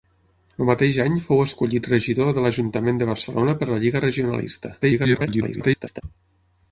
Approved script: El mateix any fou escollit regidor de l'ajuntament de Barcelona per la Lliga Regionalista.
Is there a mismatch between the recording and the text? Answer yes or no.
yes